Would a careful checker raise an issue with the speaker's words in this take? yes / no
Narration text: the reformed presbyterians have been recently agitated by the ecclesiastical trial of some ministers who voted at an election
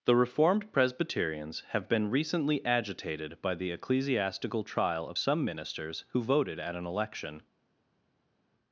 no